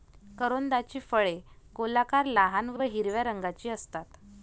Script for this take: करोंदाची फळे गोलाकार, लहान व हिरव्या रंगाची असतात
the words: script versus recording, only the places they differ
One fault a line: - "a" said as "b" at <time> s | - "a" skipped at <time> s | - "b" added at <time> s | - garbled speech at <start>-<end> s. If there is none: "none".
- "व" added at 2.7 s